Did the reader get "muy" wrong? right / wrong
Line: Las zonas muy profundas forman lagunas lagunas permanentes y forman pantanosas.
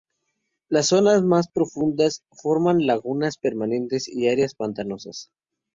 wrong